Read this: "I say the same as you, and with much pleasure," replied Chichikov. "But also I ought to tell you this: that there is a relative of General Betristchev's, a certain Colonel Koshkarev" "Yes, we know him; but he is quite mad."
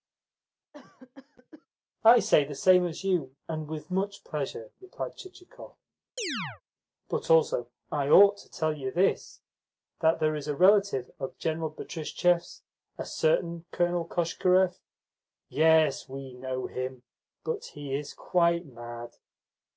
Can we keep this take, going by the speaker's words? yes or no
yes